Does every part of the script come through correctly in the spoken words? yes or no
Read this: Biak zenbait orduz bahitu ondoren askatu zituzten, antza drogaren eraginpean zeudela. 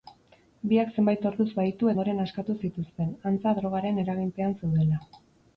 yes